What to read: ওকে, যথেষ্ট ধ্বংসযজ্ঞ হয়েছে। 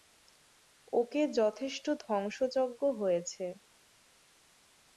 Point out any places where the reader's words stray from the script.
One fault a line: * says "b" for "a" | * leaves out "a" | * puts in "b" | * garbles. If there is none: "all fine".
all fine